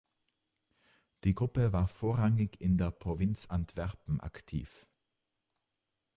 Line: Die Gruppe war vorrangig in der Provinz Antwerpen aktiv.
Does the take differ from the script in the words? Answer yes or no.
no